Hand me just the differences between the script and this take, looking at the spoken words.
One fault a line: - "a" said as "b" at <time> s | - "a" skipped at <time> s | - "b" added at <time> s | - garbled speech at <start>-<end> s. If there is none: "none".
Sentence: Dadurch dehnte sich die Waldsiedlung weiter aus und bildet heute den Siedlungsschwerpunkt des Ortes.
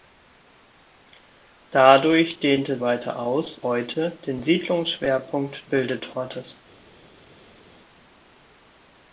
- "sich die Waldsiedlung" skipped at 2.8 s
- "und bildet" skipped at 3.6 s
- "des" said as "bildet" at 5.7 s